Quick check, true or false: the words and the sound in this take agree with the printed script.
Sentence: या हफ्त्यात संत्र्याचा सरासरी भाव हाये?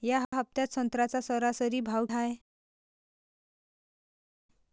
true